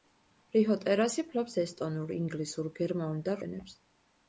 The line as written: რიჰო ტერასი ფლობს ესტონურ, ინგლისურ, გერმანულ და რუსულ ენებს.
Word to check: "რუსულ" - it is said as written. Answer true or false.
false